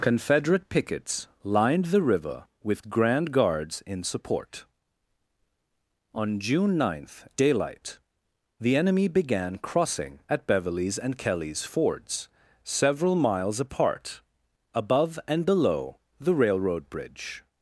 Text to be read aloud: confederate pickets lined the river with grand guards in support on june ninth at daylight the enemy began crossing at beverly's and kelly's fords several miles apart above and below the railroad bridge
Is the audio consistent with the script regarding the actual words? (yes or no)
no